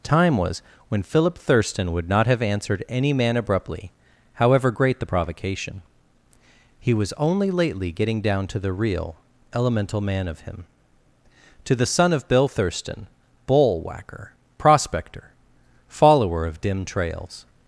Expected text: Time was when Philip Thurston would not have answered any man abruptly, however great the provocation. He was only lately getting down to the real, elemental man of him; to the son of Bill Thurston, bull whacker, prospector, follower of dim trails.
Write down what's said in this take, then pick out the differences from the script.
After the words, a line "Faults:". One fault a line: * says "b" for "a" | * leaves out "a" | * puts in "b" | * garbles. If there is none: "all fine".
Time was when Philip Thurston would not have answered any man abruptly, however great the provocation. He was only lately getting down to the real, elemental man of him; to the son of Bill Thurston, bull whacker, prospector, follower of dim trails.
Faults:
all fine